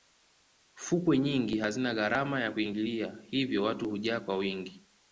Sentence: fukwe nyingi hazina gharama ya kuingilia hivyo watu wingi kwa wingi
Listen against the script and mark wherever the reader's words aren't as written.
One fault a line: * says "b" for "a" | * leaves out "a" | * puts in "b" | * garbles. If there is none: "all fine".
* says "hujaa" for "wingi"